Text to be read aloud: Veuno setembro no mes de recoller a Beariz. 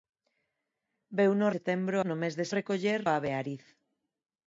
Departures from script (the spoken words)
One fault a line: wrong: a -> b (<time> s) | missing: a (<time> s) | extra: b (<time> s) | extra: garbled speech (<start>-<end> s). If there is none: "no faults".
no faults